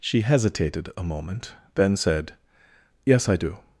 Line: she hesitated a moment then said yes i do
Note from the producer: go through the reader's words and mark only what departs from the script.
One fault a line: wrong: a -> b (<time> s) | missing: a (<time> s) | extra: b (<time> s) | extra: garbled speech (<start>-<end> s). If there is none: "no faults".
no faults